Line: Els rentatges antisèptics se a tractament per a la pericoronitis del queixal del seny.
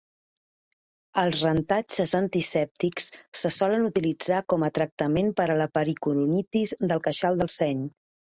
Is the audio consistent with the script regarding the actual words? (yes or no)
no